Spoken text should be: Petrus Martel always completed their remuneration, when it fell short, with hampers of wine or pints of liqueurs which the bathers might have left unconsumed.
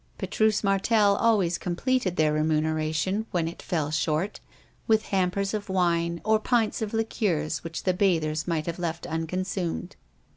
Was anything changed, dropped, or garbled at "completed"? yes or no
no